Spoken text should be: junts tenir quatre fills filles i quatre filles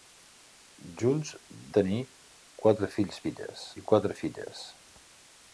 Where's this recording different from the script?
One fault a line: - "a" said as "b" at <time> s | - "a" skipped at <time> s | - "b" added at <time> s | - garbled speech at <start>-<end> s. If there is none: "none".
none